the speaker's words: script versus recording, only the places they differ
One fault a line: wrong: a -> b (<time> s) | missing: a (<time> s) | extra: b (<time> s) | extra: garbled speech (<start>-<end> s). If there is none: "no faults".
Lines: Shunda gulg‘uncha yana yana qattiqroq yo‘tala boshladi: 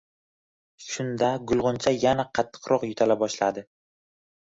missing: yana (2.3 s)